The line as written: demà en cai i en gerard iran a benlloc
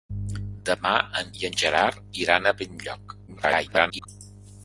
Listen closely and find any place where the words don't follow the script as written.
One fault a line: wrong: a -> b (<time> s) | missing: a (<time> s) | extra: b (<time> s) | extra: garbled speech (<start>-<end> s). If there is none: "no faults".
missing: cai (1.3 s)
extra: garbled speech (3.3-4.1 s)